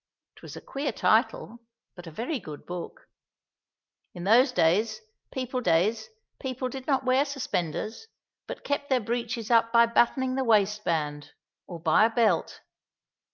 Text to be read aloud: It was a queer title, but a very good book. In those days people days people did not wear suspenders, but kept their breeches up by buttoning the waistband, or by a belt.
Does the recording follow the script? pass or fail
pass